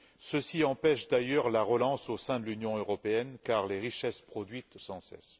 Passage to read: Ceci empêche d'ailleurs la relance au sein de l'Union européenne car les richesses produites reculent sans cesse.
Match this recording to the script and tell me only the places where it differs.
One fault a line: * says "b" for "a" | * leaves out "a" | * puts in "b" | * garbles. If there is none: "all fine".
* leaves out "reculent"